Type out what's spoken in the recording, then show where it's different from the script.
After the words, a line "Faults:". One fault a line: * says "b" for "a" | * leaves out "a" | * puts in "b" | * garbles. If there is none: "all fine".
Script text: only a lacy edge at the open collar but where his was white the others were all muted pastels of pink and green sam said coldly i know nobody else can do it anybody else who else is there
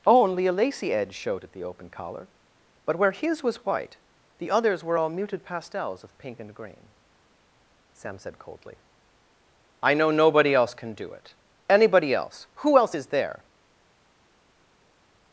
only a lacy edge showed at the open collar but where his was white the others were all muted pastels of pink and green sam said coldly i know nobody else can do it anybody else who else is there
Faults:
* puts in "showed"